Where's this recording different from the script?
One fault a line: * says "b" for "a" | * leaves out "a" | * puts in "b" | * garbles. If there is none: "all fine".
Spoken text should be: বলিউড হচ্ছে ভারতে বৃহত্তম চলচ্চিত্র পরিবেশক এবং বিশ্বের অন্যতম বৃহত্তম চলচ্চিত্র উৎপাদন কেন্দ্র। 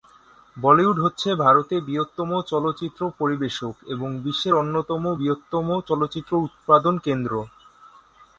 all fine